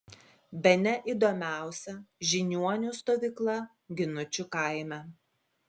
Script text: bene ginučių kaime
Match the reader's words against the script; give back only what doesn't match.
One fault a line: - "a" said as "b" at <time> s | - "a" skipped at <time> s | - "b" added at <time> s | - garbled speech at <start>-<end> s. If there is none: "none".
- "įdomiausia žiniuonių stovykla" added at 1.1 s